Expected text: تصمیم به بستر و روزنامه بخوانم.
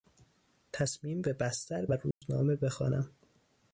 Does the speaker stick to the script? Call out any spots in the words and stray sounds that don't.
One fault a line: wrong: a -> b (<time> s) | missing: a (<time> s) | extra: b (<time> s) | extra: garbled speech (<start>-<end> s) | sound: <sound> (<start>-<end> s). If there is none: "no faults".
sound: dropout (2.1-2.2 s)